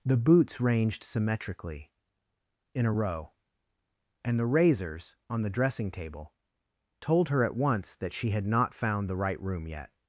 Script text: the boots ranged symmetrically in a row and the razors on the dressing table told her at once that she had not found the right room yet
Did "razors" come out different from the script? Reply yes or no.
no